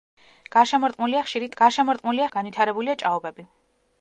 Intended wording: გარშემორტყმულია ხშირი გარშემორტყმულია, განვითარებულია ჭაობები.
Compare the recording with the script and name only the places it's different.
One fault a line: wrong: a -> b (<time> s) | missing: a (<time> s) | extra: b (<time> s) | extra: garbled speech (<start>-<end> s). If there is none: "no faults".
no faults